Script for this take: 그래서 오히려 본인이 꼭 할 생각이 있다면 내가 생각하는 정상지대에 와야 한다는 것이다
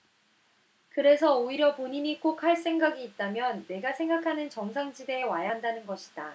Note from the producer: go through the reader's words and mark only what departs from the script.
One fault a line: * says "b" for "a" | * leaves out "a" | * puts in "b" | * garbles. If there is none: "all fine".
all fine